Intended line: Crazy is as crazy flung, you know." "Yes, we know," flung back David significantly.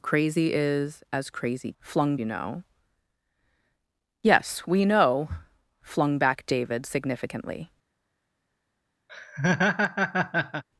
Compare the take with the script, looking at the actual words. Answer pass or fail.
pass